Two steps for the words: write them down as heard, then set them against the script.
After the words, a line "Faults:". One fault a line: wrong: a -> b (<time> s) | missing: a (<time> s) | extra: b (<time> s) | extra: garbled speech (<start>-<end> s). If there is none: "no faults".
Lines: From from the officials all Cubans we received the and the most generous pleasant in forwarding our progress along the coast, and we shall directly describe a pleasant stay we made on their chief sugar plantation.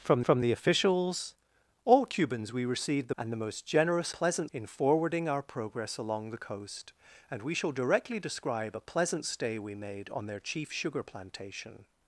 From from the officials all Cubans we received the and the most generous pleasant in forwarding our progress along the coast, and we shall directly describe a pleasant stay we made on their chief sugar plantation.
Faults:
no faults